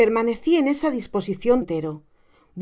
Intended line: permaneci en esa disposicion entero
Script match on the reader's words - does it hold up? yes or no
yes